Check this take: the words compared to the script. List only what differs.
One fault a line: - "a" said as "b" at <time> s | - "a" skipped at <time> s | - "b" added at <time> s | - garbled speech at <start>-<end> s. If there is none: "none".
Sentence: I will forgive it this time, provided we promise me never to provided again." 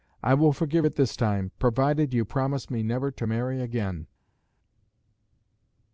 - "we" said as "you" at 2.1 s
- "provided" said as "marry" at 3.2 s